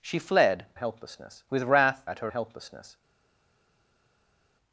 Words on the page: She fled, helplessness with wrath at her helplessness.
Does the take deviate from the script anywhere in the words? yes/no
no